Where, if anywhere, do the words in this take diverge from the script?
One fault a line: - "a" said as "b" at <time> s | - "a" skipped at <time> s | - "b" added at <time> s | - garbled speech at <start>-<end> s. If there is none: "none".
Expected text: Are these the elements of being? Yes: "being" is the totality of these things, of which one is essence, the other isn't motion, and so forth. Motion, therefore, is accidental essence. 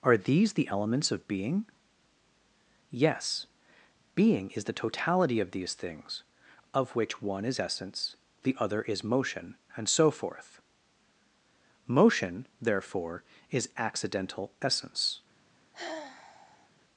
- "isn't" said as "is" at 8.8 s